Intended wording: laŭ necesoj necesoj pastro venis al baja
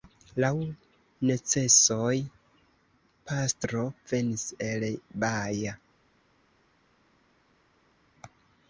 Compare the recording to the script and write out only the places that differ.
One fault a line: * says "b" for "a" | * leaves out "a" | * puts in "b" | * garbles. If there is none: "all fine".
* leaves out "necesoj"
* says "el" for "al"